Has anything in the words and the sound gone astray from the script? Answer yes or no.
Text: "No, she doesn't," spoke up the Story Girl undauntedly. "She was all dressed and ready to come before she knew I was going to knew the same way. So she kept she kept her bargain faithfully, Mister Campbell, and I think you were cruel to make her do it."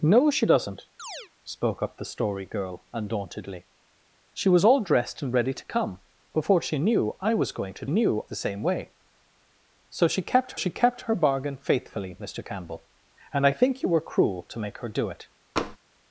yes